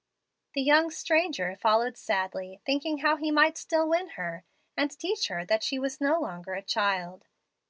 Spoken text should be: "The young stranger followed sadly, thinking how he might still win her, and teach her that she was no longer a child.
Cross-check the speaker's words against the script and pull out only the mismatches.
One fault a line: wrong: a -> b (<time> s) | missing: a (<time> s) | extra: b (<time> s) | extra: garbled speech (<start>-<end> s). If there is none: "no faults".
no faults